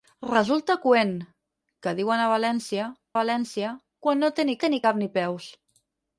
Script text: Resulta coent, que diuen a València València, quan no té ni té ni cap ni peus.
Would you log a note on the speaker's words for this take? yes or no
no